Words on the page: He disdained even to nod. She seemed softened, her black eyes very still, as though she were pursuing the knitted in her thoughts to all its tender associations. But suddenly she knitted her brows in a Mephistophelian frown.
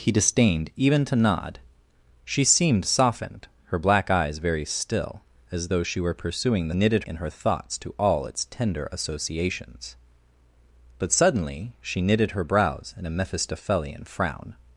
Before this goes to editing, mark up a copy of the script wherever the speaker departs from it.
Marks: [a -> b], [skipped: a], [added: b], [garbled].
He disdained even to nod. She seemed softened, her black eyes very still, as though she were pursuing the knitted in her thoughts to all its tender associations. But suddenly she knitted her brows in a Mephistophelian frown.